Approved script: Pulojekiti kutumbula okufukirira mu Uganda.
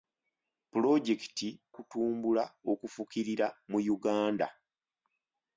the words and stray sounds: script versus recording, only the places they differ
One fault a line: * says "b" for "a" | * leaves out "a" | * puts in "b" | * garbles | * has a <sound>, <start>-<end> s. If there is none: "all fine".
all fine